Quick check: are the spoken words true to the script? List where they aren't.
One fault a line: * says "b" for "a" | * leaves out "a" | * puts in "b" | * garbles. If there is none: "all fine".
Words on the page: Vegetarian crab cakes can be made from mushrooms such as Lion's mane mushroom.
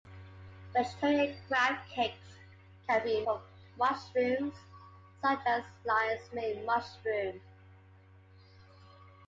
* leaves out "made"